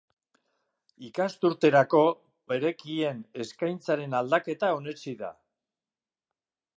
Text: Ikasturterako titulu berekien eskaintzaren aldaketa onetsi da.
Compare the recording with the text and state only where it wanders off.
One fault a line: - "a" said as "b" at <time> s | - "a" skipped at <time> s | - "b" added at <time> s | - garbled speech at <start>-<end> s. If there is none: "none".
- "titulu" skipped at 2.0 s